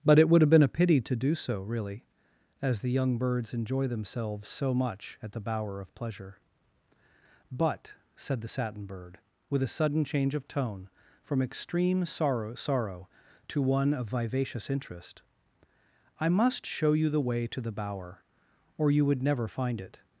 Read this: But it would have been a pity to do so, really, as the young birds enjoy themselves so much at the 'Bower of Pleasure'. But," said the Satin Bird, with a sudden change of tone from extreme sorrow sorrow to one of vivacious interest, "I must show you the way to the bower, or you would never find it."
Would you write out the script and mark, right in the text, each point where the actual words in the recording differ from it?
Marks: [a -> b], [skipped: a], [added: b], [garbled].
But it would have been a pity to do so, really, as the young birds enjoy themselves so much at the 'Bower of Pleasure'. But," said the Satin Bird, with a sudden change of tone from extreme sorrow sorrow to one of vivacious interest, "I must show you the way to the bower, or you would never find it."